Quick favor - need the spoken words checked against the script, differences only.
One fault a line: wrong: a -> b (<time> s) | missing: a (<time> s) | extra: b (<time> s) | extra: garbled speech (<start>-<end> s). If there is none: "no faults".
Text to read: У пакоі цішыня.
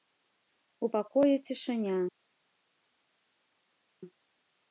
no faults